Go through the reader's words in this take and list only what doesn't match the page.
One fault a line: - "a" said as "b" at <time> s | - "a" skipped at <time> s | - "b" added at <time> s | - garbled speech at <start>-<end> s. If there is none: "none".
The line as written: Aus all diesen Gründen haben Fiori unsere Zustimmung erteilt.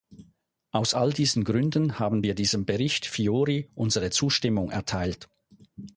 - "wir diesem Bericht" added at 2.2 s